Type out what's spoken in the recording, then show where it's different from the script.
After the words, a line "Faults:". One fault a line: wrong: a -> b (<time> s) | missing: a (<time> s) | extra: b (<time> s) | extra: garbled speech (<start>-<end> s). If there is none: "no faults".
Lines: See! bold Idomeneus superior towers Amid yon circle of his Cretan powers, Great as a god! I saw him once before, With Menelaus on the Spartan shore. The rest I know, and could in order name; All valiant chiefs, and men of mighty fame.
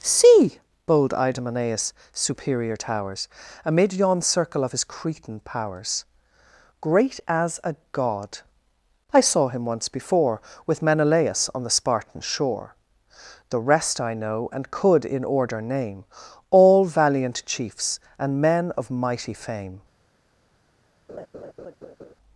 See! bold Idomeneus superior towers Amid yon circle of his Cretan powers, Great as a god! I saw him once before, With Menelaus on the Spartan shore. The rest I know, and could in order name; All valiant chiefs, and men of mighty fame.
Faults:
no faults